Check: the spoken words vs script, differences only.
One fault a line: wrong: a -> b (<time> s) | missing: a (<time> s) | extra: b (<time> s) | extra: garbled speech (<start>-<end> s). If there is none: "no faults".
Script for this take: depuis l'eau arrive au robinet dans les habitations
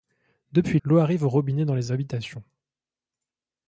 no faults